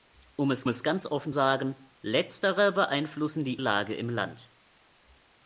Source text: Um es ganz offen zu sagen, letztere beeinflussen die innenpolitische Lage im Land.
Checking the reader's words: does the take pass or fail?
fail